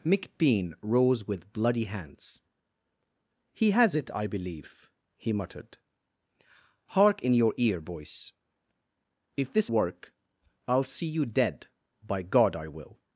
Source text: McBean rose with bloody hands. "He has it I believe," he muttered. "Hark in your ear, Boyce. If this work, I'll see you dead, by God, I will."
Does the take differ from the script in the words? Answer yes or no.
no